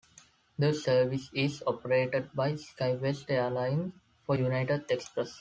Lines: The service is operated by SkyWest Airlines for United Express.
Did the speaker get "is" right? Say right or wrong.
right